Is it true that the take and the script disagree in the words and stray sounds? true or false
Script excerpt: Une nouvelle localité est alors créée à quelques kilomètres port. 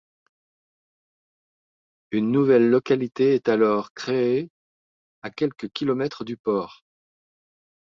true